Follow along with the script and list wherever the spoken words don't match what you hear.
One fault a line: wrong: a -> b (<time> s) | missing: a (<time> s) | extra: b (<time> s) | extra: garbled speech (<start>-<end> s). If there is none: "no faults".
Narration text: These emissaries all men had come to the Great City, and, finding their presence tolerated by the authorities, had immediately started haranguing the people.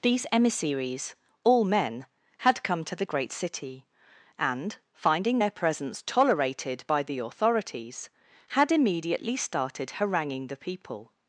no faults